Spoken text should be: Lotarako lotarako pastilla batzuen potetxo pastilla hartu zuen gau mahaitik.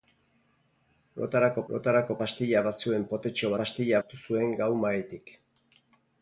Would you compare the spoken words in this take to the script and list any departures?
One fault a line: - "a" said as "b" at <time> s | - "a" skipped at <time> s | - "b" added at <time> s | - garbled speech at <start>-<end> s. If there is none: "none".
none